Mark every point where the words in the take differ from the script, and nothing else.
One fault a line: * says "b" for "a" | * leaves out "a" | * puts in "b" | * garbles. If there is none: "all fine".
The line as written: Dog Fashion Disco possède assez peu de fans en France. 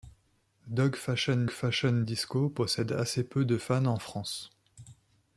* puts in "Fashion"